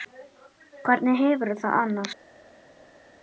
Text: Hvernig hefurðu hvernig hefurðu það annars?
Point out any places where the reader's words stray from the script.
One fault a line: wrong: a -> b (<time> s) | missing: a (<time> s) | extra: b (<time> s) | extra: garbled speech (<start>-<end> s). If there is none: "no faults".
missing: hvernig hefurðu (1.6 s)